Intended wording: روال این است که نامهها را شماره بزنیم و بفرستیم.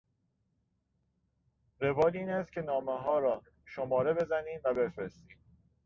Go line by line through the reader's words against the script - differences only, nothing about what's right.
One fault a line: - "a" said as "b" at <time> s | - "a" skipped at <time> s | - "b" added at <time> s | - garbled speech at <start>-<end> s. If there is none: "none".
none